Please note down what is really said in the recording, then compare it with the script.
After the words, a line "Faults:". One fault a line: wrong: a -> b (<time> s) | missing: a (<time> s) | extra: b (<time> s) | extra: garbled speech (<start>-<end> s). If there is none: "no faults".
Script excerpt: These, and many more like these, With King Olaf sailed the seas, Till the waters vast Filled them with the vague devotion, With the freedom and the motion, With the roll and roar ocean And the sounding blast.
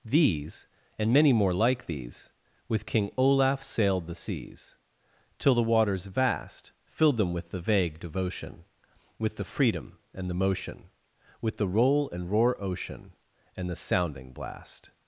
These, and many more like these, With King Olaf sailed the seas, Till the waters vast Filled them with the vague devotion, With the freedom and the motion, With the roll and roar ocean And the sounding blast.
Faults:
no faults